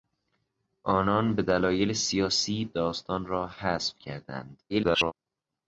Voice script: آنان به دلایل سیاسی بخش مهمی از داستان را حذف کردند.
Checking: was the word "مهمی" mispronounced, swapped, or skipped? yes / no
yes